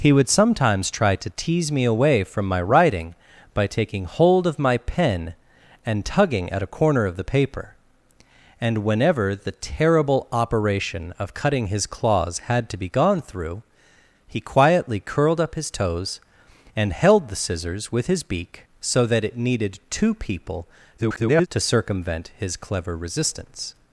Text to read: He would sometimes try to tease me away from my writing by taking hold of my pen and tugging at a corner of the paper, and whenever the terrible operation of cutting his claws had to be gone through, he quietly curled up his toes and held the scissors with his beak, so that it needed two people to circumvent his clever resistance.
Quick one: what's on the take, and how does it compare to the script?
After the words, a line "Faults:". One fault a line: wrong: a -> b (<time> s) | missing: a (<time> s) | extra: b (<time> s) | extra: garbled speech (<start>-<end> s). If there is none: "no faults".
He would sometimes try to tease me away from my writing by taking hold of my pen and tugging at a corner of the paper, and whenever the terrible operation of cutting his claws had to be gone through, he quietly curled up his toes and held the scissors with his beak, so that it needed two people [garbled] to circumvent his clever resistance.
Faults:
extra: garbled speech (21.0-21.5 s)